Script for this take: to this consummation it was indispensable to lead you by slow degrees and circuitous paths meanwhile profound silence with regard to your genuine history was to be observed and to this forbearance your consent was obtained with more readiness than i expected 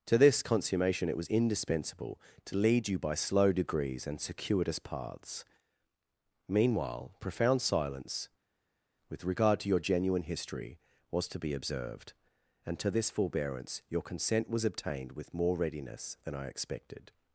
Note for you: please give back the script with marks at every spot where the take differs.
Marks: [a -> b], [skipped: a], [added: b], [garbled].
to this consummation it was indispensable to lead you by slow degrees and circuitous paths meanwhile profound silence with regard to your genuine history was to be observed and to this forbearance your consent was obtained with more readiness than i expected